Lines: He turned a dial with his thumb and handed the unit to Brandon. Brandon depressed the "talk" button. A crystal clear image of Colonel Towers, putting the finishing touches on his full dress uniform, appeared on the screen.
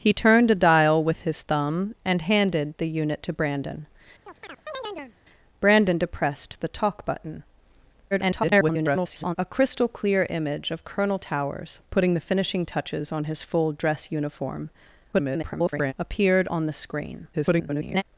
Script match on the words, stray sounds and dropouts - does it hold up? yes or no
no